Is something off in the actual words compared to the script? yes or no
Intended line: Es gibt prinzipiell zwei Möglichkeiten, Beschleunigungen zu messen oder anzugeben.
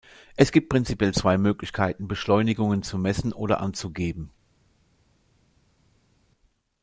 no